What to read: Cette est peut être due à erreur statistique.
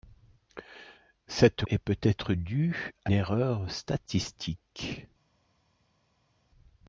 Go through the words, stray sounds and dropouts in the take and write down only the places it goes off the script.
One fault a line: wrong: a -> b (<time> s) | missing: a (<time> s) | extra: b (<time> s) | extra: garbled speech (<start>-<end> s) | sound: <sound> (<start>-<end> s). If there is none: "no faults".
no faults